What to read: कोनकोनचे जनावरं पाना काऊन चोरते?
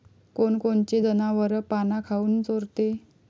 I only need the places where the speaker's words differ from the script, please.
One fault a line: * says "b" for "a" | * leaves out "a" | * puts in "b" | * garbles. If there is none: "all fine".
all fine